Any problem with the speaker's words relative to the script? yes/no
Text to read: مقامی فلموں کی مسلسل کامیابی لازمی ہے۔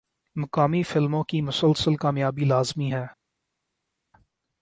no